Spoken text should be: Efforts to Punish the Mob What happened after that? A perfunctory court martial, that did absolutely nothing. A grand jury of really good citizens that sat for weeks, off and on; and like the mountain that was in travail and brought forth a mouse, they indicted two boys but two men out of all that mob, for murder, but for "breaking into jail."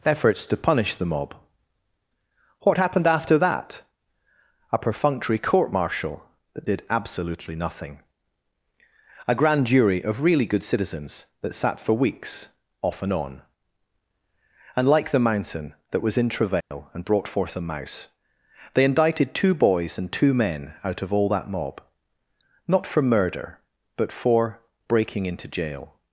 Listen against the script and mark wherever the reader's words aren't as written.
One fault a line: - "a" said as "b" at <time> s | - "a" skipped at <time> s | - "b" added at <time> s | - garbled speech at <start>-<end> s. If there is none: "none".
- "but" said as "and" at 20.0 s
- "not" added at 22.7 s